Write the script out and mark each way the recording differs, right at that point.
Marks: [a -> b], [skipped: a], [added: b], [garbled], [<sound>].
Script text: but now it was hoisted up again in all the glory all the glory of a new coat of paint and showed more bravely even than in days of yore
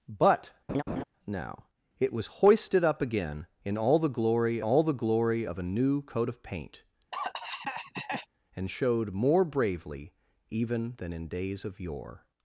but [laugh] now it was hoisted up again in all the glory all the glory of a new coat of paint [cough] and showed more bravely even than in days of yore